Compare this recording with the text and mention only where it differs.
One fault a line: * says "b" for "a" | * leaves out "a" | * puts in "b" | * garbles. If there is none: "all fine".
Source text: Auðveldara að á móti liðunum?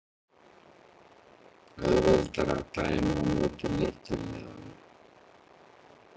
* puts in "dæma"
* puts in "litlu"